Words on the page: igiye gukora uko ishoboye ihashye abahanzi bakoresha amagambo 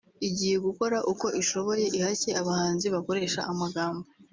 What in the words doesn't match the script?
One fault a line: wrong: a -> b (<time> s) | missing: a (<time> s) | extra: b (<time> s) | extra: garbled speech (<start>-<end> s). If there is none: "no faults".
no faults